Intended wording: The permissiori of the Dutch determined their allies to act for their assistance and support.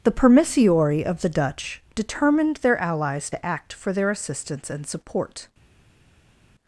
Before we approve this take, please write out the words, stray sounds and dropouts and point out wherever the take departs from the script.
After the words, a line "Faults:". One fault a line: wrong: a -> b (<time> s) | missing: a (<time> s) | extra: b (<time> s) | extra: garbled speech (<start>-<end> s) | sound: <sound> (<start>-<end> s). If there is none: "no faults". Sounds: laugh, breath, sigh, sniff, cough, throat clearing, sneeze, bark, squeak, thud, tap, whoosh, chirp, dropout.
The permissiori of the Dutch determined their allies to act for their assistance and support.
Faults:
no faults